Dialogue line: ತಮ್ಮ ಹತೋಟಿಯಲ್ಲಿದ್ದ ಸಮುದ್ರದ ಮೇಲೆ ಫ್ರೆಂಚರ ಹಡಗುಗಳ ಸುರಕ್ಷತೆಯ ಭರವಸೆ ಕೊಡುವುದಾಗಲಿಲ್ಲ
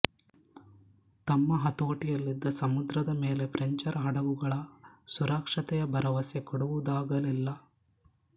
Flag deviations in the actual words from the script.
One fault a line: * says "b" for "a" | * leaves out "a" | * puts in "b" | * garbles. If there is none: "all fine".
all fine